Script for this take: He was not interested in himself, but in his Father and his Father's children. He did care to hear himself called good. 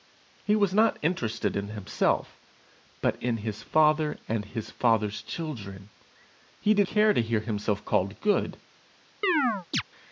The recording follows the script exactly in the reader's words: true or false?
true